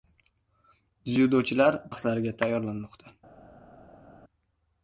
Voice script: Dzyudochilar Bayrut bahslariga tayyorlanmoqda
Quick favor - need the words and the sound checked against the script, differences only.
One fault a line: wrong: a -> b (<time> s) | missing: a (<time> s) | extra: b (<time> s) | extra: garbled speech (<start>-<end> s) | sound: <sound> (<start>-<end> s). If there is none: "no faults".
missing: Bayrut (1.8 s)